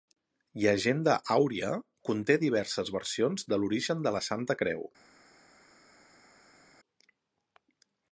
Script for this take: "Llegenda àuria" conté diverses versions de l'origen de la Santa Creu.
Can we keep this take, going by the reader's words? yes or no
yes